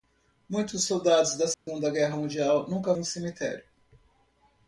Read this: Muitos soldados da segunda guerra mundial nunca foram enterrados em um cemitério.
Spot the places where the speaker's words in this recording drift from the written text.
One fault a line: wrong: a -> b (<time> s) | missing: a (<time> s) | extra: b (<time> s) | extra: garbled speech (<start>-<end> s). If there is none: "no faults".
missing: foram enterrados em (3.0 s)